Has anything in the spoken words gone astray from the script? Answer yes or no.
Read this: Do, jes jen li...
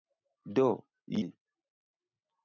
yes